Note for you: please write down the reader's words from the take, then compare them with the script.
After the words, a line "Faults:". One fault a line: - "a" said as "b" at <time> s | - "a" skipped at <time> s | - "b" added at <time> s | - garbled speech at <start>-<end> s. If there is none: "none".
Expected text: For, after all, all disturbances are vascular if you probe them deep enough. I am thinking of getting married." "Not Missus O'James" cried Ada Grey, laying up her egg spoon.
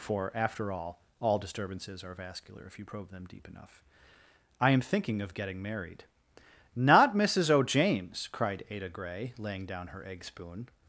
For, after all, all disturbances are vascular if you probe them deep enough. I am thinking of getting married." "Not Missus O'James" cried Ada Grey, laying down her egg spoon.
Faults:
- "up" said as "down" at 9.7 s